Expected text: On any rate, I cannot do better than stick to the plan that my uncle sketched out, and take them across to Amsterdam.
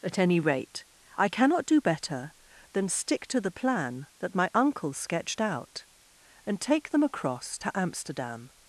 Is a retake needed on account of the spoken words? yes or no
yes